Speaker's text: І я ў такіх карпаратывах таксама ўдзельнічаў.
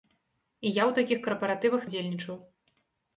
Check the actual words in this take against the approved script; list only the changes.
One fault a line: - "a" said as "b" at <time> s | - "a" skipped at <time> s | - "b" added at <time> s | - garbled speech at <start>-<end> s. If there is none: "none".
- "таксама" skipped at 1.9 s